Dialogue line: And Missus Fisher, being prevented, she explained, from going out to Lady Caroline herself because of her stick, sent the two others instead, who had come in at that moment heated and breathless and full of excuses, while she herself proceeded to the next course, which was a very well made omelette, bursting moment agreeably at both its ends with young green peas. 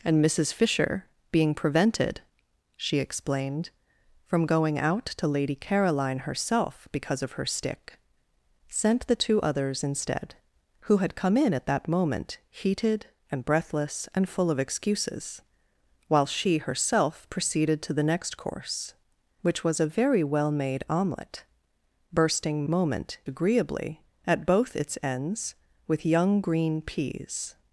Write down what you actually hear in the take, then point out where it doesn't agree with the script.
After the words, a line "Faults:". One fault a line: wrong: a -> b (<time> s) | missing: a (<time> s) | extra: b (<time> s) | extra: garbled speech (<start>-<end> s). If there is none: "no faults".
And Missus Fisher, being prevented, she explained, from going out to Lady Caroline herself because of her stick, sent the two others instead, who had come in at that moment heated and breathless and full of excuses, while she herself proceeded to the next course, which was a very well made omelette, bursting moment agreeably at both its ends with young green peas.
Faults:
no faults